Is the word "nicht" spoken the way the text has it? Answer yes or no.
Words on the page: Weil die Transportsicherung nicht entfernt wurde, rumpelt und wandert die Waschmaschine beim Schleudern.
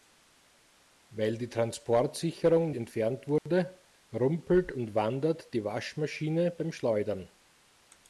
no